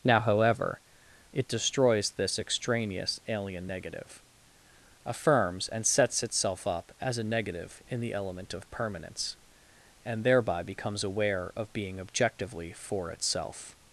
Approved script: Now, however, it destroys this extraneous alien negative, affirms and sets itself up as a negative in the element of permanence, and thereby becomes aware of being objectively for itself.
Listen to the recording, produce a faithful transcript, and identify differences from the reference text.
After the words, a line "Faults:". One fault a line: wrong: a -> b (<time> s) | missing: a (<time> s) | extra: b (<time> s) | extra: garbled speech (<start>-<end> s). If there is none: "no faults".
Now, however, it destroys this extraneous alien negative, affirms and sets itself up as a negative in the element of permanence, and thereby becomes aware of being objectively for itself.
Faults:
no faults